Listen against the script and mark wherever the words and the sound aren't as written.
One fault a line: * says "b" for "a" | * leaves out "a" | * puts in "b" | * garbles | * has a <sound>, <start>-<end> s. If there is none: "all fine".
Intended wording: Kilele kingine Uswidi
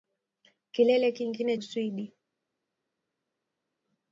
all fine